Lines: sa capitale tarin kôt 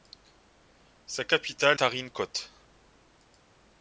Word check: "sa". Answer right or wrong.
right